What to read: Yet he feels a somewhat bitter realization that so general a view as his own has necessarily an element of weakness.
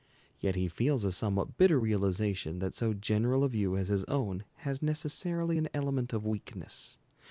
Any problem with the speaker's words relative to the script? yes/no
no